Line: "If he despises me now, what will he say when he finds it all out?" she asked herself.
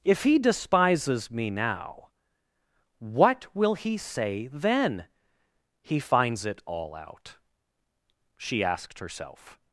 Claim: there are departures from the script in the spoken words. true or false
true